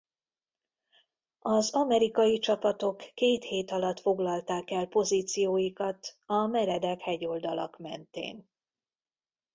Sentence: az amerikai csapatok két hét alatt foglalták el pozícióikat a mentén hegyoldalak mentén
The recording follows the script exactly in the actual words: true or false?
false